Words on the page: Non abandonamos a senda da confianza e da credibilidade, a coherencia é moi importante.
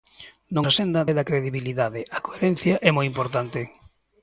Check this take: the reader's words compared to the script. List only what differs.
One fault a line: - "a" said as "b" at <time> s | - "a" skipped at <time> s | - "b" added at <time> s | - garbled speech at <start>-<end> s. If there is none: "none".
- "abandonamos" skipped at 0.7 s
- "da confianza" skipped at 1.0 s